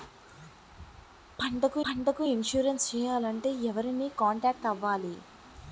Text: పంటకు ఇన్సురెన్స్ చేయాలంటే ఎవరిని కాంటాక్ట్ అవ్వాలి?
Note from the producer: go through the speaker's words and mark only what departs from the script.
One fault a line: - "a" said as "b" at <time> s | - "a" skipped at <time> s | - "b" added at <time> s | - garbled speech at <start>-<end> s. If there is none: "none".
- "పంటకు" added at 1.8 s